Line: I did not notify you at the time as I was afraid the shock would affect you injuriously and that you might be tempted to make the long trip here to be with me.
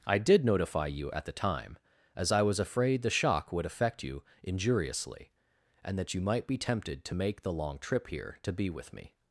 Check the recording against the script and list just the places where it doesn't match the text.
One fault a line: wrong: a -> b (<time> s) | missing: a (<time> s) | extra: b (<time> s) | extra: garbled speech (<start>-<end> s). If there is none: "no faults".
missing: not (0.4 s)